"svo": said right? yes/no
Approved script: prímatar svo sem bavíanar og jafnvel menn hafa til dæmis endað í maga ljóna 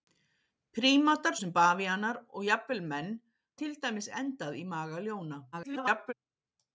no